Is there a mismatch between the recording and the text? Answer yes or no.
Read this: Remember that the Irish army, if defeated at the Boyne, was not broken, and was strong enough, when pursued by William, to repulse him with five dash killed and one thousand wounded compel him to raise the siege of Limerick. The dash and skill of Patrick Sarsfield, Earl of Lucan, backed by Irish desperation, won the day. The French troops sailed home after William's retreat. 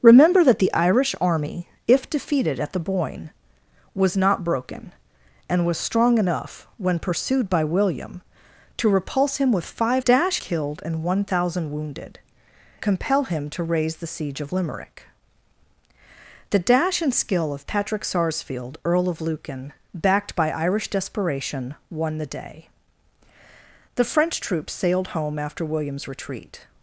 no